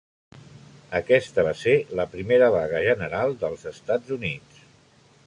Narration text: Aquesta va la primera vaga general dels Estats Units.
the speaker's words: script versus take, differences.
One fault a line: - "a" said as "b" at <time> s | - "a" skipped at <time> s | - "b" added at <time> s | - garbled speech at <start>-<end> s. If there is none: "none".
- "ser" added at 1.6 s